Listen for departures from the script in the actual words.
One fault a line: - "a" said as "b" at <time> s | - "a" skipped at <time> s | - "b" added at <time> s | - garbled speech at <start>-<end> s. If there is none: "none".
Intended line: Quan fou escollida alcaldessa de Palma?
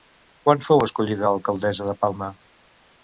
none